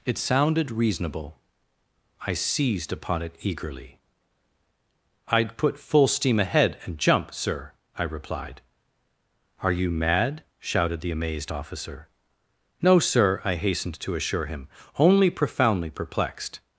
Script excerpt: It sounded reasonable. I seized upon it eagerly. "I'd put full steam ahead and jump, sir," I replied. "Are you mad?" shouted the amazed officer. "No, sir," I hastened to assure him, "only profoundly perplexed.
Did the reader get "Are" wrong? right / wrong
right